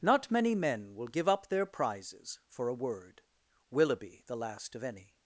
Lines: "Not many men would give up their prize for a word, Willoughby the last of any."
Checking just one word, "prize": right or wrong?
wrong